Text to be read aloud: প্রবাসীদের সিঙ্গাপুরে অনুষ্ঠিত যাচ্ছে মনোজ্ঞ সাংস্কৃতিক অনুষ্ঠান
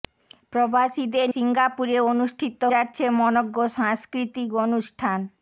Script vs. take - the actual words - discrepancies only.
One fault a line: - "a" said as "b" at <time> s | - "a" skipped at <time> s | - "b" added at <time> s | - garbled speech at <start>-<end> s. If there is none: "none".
none